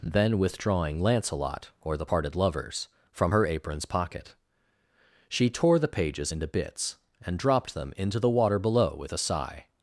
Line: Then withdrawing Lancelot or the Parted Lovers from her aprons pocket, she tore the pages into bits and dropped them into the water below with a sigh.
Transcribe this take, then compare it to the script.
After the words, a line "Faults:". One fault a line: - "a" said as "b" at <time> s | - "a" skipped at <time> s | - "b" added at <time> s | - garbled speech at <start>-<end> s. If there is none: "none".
Then withdrawing Lancelot or the Parted Lovers from her aprons pocket, she tore the pages into bits and dropped them into the water below with a sigh.
Faults:
none